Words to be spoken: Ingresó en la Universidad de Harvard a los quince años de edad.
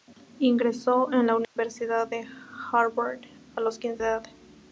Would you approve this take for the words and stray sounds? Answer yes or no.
no